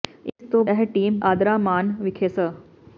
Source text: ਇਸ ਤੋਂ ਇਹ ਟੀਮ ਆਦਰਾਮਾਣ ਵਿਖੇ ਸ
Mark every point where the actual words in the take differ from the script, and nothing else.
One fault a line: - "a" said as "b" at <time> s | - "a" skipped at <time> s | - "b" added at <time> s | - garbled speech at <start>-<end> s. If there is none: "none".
none